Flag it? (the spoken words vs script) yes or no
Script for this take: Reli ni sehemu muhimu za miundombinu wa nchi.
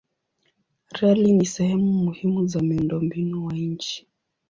no